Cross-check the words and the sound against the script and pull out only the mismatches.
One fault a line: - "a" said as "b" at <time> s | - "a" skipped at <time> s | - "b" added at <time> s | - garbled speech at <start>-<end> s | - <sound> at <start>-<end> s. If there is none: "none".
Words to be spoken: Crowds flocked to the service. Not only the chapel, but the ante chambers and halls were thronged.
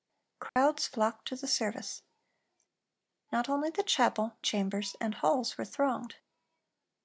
- dropout at 0.5-0.6 s
- "but the ante" skipped at 4.3 s